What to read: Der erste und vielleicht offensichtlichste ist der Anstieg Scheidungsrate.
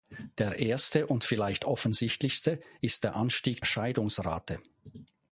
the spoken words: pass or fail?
pass